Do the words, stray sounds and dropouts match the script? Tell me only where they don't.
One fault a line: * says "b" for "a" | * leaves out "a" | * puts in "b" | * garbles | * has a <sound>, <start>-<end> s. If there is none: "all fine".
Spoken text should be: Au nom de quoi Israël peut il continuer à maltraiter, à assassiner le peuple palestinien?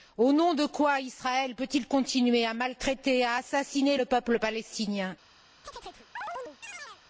* has a chirp, 5.6-7.0 s